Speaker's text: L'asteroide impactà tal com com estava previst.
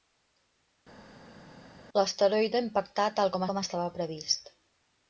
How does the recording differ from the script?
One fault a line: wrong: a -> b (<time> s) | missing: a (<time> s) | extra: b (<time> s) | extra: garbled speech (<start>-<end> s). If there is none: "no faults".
no faults